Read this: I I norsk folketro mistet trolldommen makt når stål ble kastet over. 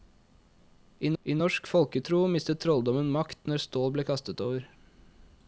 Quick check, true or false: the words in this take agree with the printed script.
true